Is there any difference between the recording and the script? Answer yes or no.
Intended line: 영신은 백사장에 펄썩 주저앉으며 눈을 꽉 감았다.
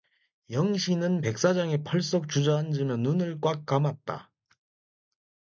no